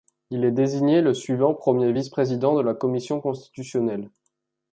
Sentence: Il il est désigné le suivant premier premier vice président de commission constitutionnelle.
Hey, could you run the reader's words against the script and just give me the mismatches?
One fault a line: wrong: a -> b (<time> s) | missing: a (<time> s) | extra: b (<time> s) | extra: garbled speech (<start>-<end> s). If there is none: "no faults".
missing: il (0.5 s)
missing: premier (1.9 s)
extra: la (2.6 s)